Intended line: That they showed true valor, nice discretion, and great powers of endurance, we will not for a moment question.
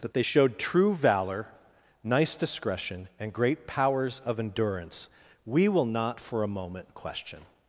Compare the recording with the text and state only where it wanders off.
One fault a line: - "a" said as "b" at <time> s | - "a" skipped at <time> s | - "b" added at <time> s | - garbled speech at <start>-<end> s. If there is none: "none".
none